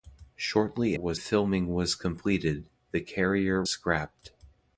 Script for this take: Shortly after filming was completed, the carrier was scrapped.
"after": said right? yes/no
no